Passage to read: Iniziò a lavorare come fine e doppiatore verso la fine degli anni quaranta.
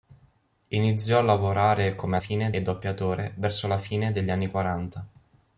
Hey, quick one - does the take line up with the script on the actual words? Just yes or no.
yes